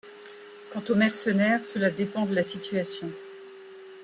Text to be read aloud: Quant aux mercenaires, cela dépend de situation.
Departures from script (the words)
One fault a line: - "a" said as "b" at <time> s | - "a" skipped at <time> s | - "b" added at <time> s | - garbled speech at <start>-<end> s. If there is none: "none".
- "la" added at 2.3 s